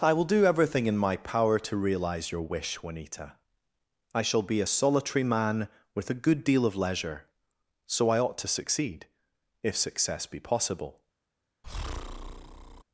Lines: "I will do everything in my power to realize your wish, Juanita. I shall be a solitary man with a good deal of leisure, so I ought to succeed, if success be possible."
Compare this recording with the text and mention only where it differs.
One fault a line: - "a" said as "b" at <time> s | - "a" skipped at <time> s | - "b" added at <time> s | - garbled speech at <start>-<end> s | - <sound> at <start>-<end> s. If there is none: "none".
- breath at 11.6-12.8 s